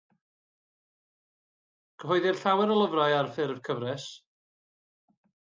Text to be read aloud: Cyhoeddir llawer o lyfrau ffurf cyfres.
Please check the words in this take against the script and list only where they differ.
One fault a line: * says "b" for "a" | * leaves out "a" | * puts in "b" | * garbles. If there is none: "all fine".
* puts in "ar"